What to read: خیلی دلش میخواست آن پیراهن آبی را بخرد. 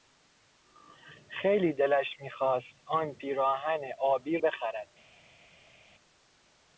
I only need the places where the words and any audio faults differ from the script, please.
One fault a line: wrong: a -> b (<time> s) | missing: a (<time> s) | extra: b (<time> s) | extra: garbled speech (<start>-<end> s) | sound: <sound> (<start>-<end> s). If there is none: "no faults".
missing: را (4.4 s)